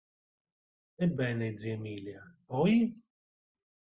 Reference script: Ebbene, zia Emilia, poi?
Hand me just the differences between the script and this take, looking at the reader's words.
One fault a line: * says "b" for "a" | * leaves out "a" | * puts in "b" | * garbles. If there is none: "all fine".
all fine